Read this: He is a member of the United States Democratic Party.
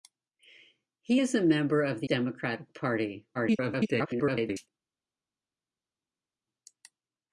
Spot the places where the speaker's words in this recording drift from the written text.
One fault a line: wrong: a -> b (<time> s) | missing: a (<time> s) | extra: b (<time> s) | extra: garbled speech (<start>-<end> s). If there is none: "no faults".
missing: United States (2.1 s)
extra: garbled speech (3.3-4.7 s)